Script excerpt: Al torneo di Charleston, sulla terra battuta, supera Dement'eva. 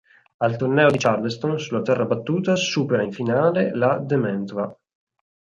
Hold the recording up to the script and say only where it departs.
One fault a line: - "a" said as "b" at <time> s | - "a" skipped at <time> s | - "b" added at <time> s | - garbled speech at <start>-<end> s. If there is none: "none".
- "in finale la" added at 3.0 s